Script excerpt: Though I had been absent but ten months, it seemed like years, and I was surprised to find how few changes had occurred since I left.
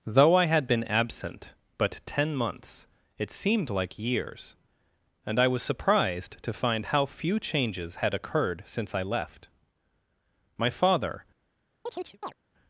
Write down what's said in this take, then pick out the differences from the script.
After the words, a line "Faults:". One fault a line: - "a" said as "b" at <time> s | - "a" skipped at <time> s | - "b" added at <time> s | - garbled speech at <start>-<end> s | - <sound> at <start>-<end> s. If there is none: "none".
Though I had been absent but ten months, it seemed like years, and I was surprised to find how few changes had occurred since I left. My father
Faults:
- "My father" added at 10.6 s
- chirp at 11.9-12.3 s